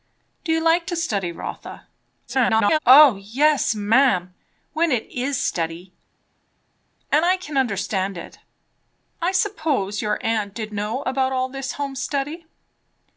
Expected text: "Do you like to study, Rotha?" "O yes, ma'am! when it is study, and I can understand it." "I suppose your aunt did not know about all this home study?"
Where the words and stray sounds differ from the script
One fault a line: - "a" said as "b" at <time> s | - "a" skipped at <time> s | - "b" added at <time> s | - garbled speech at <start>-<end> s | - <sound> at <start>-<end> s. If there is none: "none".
- garbled speech at 2.3-2.8 s
- "not" skipped at 10.7 s